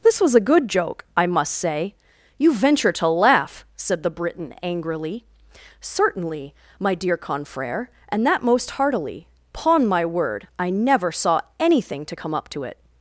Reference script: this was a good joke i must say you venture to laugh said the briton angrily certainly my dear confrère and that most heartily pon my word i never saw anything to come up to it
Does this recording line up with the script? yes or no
yes